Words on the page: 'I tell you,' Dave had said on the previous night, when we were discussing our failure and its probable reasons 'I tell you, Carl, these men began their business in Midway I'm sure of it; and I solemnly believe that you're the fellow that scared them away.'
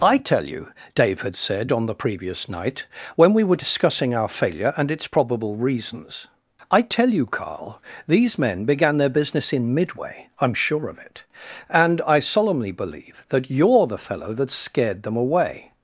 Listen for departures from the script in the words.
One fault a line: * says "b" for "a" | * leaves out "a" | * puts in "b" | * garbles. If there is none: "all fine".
all fine